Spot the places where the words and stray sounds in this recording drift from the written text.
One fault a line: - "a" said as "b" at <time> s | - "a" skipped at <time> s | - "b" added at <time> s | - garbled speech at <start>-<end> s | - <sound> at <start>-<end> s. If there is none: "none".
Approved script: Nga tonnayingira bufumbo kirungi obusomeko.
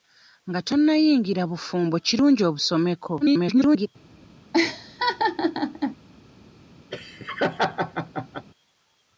- garbled speech at 3.2-3.9 s
- laugh at 4.5-6.0 s
- laugh at 6.9-8.5 s